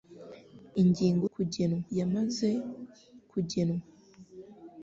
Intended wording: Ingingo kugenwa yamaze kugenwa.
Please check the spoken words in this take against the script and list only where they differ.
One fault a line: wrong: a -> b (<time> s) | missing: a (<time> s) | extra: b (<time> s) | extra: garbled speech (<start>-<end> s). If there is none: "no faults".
no faults